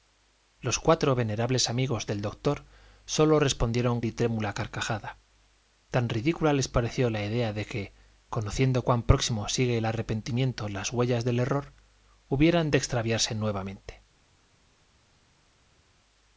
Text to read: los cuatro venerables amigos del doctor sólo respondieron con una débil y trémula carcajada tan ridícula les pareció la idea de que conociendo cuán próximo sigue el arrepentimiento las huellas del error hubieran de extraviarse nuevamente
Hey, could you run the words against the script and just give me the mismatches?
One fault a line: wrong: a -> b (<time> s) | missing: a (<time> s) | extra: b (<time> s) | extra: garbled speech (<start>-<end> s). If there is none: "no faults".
missing: con una débil (4.0 s)